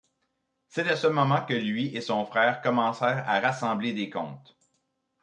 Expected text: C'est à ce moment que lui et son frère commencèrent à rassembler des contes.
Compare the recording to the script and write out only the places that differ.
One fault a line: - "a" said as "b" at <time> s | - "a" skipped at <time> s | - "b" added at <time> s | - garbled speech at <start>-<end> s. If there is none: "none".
none